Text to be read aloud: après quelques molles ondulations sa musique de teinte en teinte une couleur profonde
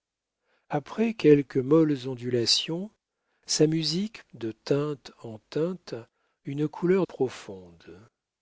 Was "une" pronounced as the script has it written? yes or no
yes